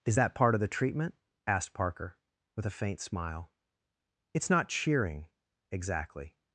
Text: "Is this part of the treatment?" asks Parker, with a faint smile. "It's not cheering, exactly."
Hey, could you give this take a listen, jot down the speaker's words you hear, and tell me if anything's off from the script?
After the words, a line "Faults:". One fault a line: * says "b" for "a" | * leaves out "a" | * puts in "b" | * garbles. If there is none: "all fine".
"Is that part of the treatment?" asked Parker, with a faint smile. "It's not cheering, exactly."
Faults:
* says "that" for "this"
* says "asked" for "asks"